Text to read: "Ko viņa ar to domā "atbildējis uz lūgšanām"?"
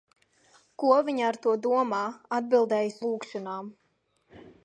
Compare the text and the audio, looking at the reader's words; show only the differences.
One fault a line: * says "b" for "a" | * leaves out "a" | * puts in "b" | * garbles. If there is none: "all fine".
* leaves out "uz"